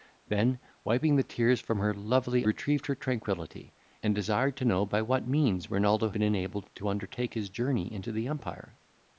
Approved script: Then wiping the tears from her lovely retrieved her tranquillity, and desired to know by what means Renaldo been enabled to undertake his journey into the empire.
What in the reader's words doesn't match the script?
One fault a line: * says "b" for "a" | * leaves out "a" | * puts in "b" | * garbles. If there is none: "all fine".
all fine